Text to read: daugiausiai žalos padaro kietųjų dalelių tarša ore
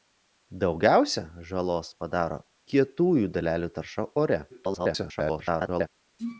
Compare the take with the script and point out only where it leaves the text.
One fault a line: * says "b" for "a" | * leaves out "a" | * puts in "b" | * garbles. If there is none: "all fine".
* garbles